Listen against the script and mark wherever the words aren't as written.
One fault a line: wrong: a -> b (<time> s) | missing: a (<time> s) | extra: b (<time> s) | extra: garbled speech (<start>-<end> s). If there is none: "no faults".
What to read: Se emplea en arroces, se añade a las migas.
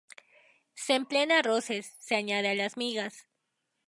no faults